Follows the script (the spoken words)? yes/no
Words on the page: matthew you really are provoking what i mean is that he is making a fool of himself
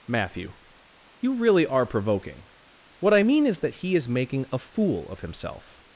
yes